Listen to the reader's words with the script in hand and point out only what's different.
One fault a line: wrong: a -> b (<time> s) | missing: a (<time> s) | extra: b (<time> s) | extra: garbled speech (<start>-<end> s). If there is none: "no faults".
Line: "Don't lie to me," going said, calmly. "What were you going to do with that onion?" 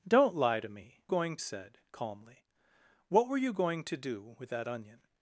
no faults